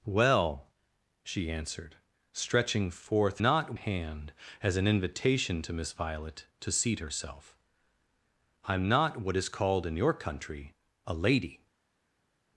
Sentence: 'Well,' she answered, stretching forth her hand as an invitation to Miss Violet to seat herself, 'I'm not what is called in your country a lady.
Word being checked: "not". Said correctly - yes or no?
yes